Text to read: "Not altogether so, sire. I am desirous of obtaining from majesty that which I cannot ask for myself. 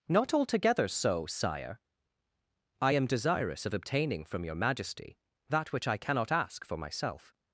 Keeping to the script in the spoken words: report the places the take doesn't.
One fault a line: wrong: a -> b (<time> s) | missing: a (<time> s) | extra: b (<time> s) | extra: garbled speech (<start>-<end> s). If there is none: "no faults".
extra: your (4.5 s)